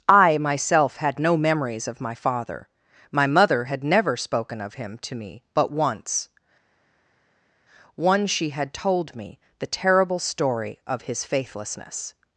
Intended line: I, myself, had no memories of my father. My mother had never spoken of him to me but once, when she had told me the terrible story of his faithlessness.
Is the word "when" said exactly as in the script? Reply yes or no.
no